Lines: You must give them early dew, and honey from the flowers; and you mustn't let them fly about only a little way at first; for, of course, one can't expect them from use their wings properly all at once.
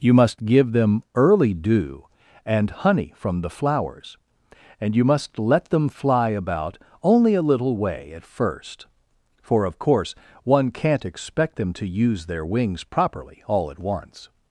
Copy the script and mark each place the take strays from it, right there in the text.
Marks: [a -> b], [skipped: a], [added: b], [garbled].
You must give them early dew, and honey from the flowers; and you [mustn't -> must] let them fly about only a little way at first; for, of course, one can't expect them [from -> to] use their wings properly all at once.